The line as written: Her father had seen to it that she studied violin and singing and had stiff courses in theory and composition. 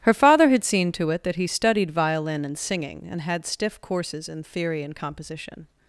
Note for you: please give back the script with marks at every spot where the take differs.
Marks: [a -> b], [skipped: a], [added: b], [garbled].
Her father had seen to it that [she -> he] studied violin and singing and had stiff courses in theory and composition.